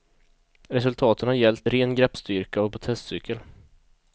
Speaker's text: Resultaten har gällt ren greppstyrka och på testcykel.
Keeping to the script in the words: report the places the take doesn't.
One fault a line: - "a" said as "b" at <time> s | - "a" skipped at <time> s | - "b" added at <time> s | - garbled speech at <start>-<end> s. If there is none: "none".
none